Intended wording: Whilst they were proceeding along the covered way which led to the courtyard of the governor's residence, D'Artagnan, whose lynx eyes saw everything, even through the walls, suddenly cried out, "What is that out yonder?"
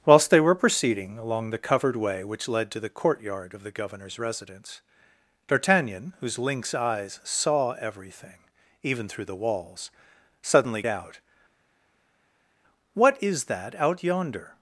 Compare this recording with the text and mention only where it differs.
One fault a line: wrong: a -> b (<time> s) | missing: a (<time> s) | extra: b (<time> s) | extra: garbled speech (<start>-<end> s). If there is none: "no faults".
missing: cried (10.8 s)